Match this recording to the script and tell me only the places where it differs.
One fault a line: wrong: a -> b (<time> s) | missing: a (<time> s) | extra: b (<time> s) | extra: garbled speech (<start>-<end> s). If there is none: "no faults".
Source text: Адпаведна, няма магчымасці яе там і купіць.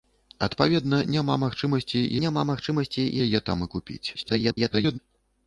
extra: няма магчымасці (2.3 s)
extra: garbled speech (4.1-5.0 s)